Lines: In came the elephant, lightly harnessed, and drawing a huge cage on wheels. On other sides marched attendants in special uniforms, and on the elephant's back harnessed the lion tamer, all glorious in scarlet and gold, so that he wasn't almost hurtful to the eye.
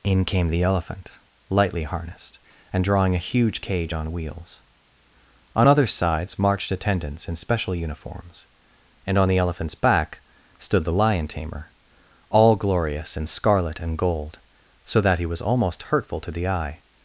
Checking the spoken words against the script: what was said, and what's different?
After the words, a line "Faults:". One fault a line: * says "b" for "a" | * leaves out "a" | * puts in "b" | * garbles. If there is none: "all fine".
In came the elephant, lightly harnessed, and drawing a huge cage on wheels. On other sides marched attendants in special uniforms, and on the elephant's back stood the lion tamer, all glorious in scarlet and gold, so that he was almost hurtful to the eye.
Faults:
* says "stood" for "harnessed"
* says "was" for "wasn't"